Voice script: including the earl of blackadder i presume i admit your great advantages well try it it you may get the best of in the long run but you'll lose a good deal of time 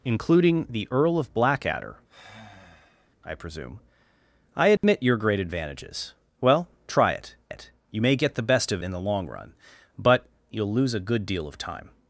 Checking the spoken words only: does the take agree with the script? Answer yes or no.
yes